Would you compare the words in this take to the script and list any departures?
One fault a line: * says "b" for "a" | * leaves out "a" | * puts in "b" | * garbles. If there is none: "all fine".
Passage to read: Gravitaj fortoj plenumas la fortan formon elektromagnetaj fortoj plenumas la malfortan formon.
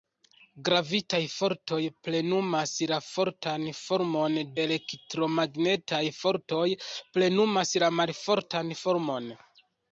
all fine